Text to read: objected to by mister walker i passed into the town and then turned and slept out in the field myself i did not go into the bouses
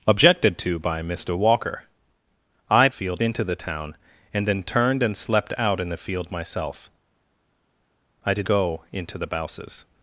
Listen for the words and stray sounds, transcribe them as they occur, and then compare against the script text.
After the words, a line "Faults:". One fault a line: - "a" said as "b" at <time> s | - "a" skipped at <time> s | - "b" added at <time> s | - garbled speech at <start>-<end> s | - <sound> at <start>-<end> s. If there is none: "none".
objected to by mister walker i field into the town and then turned and slept out in the field myself i did go into the bouses
Faults:
- "passed" said as "field" at 2.9 s
- "not" skipped at 8.5 s